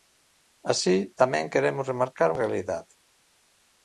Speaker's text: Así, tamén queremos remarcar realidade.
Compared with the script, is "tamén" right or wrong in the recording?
right